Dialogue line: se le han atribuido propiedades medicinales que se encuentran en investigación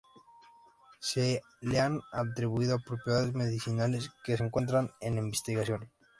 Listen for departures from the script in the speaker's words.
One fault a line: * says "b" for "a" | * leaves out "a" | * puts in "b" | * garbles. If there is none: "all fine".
all fine